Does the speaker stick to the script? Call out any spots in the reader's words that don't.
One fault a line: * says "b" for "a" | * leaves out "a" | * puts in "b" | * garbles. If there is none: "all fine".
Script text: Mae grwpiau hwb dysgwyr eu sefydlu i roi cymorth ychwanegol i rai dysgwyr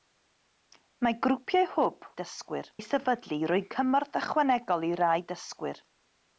all fine